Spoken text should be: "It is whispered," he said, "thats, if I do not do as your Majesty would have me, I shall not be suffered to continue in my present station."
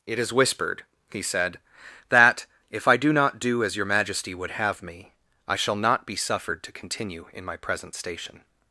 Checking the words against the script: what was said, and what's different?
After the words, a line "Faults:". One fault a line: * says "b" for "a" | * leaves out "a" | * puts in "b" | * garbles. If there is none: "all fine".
"It is whispered," he said, "that, if I do not do as your Majesty would have me, I shall not be suffered to continue in my present station."
Faults:
* says "that" for "thats"